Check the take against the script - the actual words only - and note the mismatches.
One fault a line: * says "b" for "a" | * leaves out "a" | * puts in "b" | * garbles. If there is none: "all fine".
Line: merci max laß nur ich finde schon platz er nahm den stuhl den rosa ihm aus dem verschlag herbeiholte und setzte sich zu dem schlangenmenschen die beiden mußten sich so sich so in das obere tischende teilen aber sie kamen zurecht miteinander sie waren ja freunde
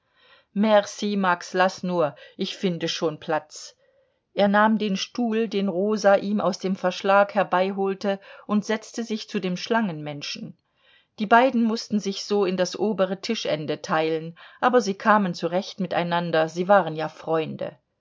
* leaves out "sich so"